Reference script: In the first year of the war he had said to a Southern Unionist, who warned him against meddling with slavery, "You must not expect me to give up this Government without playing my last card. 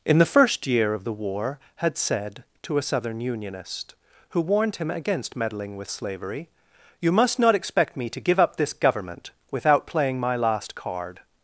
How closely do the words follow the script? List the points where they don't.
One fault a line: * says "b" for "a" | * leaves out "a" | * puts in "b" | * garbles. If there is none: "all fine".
* leaves out "he"